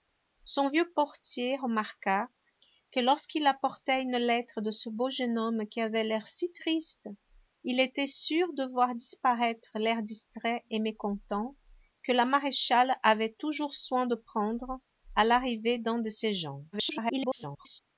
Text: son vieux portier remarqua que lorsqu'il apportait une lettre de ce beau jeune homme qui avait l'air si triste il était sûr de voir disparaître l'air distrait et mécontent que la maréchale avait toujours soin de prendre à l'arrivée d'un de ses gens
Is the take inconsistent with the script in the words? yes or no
yes